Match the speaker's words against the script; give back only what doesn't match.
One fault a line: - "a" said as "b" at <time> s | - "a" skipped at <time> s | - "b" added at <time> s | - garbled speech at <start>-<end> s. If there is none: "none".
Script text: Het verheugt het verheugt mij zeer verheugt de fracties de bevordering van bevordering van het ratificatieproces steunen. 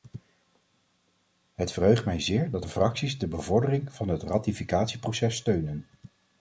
- "het verheugt" skipped at 2.0 s
- "verheugt" said as "dat" at 2.5 s
- "bevordering van" skipped at 4.1 s